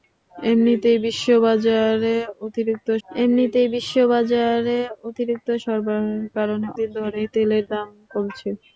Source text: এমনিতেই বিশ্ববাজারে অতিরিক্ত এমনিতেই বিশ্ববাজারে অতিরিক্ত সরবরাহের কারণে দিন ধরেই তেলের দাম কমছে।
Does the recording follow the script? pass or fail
pass